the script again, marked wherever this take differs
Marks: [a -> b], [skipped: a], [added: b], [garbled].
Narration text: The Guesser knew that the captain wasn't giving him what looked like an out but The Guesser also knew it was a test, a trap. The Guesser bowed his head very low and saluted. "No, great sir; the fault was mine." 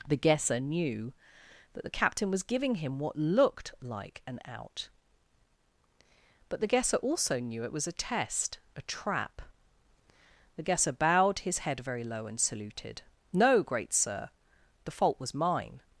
The Guesser knew that the captain [wasn't -> was] giving him what looked like an out but The Guesser also knew it was a test, a trap. The Guesser bowed his head very low and saluted. "No, great sir; the fault was mine."